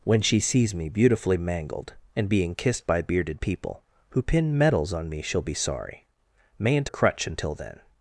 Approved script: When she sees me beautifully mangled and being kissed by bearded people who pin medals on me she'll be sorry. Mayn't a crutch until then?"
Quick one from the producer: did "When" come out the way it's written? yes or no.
yes